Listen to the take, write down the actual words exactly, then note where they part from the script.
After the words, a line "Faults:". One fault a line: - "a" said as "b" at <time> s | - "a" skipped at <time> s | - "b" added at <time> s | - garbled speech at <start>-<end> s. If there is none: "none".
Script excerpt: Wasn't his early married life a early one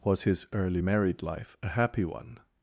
Was his early married life a happy one
Faults:
- "Wasn't" said as "Was" at 0.0 s
- "early" said as "happy" at 1.7 s